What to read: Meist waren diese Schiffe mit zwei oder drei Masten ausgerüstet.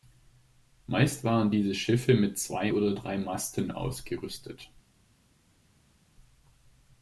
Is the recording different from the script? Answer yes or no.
no